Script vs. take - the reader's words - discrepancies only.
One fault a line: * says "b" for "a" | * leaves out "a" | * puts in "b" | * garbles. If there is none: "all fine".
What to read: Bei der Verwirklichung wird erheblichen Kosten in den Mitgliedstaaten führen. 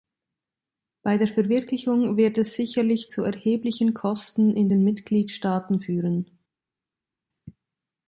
* puts in "es sicherlich zu"